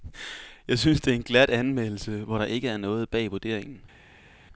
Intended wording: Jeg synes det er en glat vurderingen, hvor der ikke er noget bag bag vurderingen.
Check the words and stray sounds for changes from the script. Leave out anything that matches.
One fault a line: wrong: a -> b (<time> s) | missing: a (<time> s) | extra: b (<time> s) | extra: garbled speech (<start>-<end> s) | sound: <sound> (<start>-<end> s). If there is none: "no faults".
wrong: vurderingen -> anmeldelse (1.5 s)
missing: bag (3.3 s)